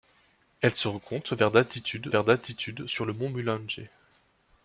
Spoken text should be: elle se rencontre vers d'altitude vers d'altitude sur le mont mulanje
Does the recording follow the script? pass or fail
pass